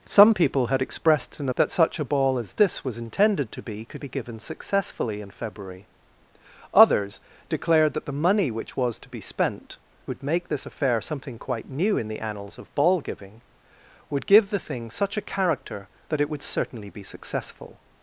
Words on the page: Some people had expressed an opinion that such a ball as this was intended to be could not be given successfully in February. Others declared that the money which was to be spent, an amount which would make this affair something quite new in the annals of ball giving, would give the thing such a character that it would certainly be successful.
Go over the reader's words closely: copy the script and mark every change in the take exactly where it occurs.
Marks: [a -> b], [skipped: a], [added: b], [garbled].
Some people had expressed an [skipped: opinion] that such a ball as this was intended to be could [skipped: not] be given successfully in February. Others declared that the money which was to be spent, [skipped: an amount which] would make this affair something quite new in the annals of ball giving, would give the thing such a character that it would certainly be successful.